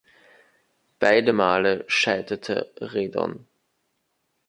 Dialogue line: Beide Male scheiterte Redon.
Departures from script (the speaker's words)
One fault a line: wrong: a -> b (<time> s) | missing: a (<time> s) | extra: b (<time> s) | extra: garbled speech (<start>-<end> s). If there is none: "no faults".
no faults